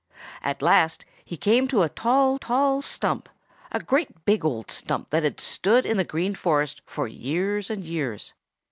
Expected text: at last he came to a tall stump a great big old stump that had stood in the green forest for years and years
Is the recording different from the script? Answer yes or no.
yes